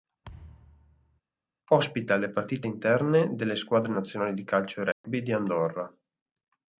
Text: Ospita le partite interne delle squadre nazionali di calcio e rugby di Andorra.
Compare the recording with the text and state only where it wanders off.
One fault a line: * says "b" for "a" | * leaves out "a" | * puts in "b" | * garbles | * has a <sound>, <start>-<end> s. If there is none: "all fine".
* has a thud, 0.2-1.2 s
* has a dropout, 4.9-5.0 s